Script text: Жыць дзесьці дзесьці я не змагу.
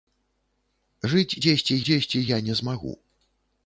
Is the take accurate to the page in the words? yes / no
yes